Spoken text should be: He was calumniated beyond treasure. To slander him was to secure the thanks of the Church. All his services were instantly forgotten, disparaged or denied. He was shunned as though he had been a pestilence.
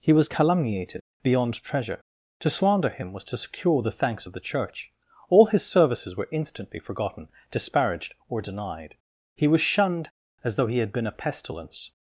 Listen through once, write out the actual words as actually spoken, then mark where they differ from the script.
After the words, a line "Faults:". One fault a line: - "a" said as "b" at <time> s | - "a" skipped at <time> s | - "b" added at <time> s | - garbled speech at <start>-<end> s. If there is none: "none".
He was calumniated beyond treasure. To slander him was to secure the thanks of the Church. All his services were instantly forgotten, disparaged or denied. He was shunned as though he had been a pestilence.
Faults:
none